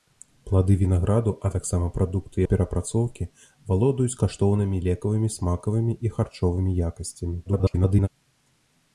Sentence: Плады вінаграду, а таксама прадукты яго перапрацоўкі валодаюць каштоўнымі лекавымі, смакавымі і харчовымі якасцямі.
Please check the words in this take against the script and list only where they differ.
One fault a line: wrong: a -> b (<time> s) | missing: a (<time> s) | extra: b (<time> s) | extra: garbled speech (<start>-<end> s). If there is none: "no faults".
missing: яго (2.4 s)
extra: garbled speech (7.5-8.1 s)